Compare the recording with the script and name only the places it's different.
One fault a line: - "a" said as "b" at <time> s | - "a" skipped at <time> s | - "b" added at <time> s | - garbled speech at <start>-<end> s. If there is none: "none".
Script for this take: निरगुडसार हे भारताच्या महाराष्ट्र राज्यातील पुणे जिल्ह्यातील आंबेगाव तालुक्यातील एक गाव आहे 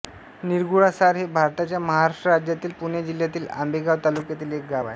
none